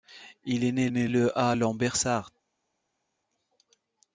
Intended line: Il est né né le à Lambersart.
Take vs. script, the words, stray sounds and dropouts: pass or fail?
pass